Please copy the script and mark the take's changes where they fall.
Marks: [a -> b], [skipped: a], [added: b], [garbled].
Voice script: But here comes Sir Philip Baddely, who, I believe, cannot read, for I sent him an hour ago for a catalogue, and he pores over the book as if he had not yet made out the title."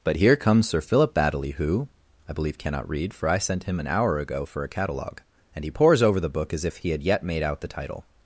But here comes Sir Philip Baddely, who, I believe, cannot read, for I sent him an hour ago for a catalogue, and he pores over the book as if he had [skipped: not] yet made out the title."